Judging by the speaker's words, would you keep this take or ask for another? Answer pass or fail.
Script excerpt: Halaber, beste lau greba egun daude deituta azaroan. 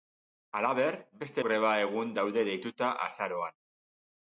fail